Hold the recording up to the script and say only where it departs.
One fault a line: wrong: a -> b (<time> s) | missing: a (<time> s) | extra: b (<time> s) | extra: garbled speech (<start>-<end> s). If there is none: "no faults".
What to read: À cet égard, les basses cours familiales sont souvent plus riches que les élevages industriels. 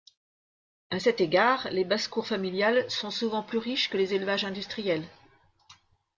no faults